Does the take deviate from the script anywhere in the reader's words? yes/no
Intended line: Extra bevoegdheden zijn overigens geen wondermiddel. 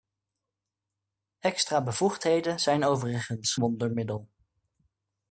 yes